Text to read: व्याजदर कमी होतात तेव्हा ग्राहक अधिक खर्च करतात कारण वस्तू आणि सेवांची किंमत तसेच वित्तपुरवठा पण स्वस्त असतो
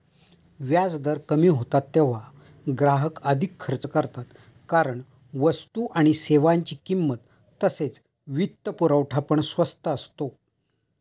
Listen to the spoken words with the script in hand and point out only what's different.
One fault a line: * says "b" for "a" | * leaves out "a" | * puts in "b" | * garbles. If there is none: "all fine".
all fine